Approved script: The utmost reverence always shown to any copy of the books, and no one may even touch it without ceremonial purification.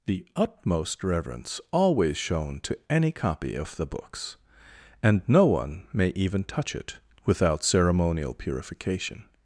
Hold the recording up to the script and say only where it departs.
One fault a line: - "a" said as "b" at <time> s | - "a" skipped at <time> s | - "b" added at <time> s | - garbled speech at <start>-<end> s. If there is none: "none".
none